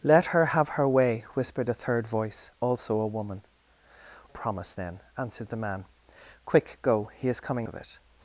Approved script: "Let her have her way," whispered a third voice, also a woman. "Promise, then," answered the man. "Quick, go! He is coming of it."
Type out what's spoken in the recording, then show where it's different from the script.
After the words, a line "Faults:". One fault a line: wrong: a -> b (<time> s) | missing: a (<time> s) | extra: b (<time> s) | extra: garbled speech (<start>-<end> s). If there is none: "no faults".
"Let her have her way," whispered a third voice, also a woman. "Promise, then," answered the man. "Quick, go! He is coming of it."
Faults:
no faults